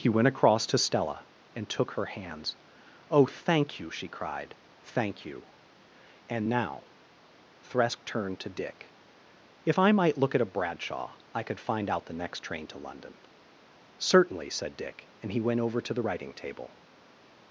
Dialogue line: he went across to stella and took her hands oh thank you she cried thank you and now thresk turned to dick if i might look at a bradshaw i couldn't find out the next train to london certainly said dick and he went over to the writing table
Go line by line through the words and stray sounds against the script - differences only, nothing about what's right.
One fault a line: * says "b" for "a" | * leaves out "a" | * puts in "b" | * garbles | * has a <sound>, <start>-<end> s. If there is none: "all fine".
* says "could" for "couldn't"